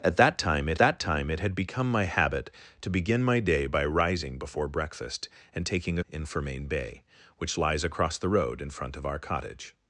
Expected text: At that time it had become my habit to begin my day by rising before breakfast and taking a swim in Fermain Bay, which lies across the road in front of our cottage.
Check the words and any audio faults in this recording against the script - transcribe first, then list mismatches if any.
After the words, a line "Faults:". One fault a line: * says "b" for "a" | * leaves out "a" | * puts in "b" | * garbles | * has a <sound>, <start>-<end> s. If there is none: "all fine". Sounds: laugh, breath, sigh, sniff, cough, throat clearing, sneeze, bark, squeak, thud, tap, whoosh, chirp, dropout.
At that time it that time it had become my habit to begin my day by rising before breakfast and taking a in Fermain Bay, which lies across the road in front of our cottage.
Faults:
* puts in "that time it"
* leaves out "swim"